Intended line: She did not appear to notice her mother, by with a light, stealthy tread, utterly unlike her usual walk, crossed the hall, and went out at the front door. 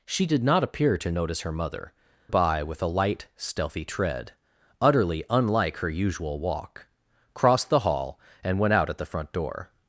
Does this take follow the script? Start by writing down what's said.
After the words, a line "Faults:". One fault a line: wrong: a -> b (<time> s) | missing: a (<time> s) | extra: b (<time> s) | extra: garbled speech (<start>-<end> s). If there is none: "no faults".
She did not appear to notice her mother, by with a light, stealthy tread, utterly unlike her usual walk, crossed the hall, and went out at the front door.
Faults:
no faults